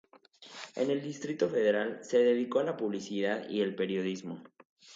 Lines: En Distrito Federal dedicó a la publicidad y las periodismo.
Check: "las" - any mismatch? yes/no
yes